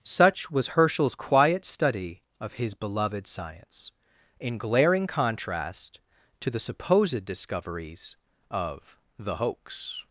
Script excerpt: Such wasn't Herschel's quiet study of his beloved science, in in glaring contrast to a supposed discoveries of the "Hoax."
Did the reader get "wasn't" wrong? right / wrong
wrong